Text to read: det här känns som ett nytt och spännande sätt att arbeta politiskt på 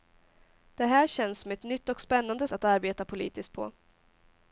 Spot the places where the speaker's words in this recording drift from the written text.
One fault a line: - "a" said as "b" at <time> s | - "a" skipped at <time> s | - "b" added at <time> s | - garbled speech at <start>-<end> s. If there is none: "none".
- "sätt" skipped at 2.5 s